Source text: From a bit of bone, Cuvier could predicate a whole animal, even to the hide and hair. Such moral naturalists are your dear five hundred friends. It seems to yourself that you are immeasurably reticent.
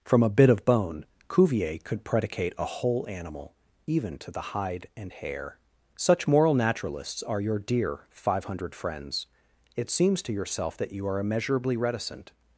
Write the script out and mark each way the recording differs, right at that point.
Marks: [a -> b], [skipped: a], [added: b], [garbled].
From a bit of bone, Cuvier could predicate a whole animal, even to the hide and hair. Such moral naturalists are your dear five hundred friends. It seems to yourself that you are immeasurably reticent.